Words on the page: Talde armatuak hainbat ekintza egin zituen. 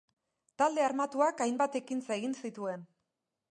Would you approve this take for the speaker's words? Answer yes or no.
yes